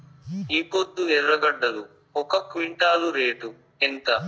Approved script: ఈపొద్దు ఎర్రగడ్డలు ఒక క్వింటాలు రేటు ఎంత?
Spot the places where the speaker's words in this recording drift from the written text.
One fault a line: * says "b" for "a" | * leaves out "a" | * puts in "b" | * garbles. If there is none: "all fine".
all fine